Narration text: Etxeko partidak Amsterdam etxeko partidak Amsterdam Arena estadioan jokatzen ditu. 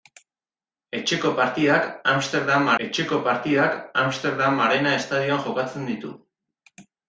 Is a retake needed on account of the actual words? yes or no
no